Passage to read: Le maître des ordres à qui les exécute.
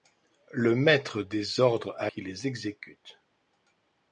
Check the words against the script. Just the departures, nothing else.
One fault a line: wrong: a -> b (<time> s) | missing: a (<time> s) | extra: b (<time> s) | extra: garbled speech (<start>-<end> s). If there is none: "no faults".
no faults